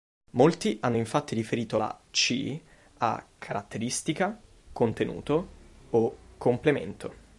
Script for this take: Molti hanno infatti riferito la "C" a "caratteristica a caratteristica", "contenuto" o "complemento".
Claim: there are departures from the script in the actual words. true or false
true